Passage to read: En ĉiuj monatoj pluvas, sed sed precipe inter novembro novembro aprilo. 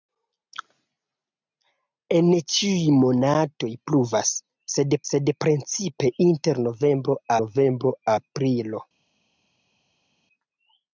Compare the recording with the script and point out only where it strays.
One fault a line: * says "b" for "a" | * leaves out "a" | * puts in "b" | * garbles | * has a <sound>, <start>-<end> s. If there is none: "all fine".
all fine